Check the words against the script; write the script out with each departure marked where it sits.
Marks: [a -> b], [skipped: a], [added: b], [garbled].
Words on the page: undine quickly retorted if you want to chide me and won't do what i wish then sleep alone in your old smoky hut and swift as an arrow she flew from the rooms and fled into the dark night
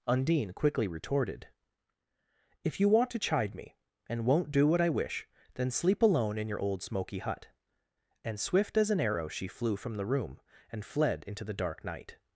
undine quickly retorted if you want to chide me and won't do what i wish then sleep alone in your old smoky hut and swift as an arrow she flew from the [rooms -> room] and fled into the dark night